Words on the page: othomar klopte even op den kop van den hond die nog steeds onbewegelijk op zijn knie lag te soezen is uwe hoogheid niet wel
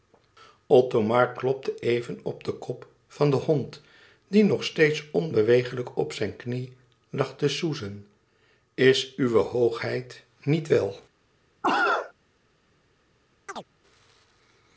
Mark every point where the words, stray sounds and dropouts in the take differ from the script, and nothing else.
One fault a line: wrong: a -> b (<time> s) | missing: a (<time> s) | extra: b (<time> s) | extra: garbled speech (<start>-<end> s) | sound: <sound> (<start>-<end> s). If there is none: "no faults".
sound: cough (11.6-12.1 s)
sound: chirp (13.5-13.7 s)